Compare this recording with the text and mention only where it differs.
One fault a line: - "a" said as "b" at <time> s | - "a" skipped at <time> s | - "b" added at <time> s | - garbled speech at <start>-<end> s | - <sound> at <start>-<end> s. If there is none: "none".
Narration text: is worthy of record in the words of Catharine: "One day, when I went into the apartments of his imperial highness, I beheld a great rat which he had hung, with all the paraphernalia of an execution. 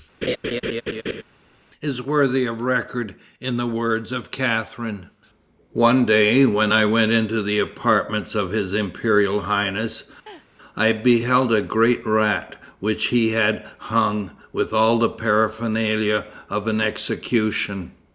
- laugh at 0.2-1.2 s
- laugh at 10.3-10.5 s